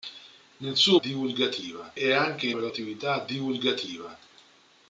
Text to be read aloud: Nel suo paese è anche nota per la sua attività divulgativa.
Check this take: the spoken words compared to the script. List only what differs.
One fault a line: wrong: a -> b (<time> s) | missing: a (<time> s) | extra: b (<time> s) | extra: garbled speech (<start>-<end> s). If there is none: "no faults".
wrong: paese -> divulgativa (0.9 s)
missing: nota (2.5 s)
missing: sua (2.7 s)